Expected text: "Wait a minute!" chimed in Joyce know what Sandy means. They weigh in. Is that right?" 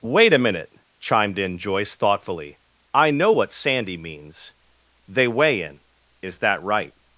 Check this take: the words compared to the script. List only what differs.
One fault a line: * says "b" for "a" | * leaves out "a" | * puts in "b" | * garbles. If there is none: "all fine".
* puts in "thoughtfully I"